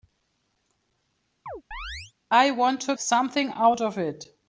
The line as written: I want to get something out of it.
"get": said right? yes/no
no